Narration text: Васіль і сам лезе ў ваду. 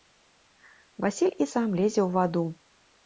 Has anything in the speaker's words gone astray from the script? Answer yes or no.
no